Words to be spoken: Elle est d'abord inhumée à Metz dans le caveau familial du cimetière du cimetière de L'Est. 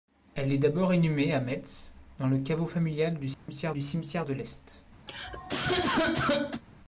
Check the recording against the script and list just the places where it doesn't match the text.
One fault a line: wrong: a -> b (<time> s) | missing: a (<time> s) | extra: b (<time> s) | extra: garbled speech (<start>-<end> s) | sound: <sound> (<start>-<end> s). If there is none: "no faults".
sound: dropout (3.3-3.5 s)
sound: cough (5.1-6.6 s)